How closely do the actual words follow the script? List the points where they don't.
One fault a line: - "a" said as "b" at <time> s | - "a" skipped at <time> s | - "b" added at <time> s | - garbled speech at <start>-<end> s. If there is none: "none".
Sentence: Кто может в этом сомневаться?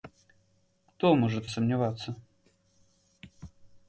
- "этом" skipped at 1.5 s